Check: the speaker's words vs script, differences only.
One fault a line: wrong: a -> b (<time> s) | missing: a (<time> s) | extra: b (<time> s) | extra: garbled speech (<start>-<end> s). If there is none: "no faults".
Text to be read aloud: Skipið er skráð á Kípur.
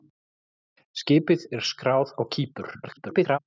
extra: garbled speech (2.8-3.4 s)